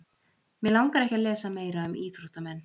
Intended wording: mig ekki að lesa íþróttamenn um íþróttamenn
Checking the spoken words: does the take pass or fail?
fail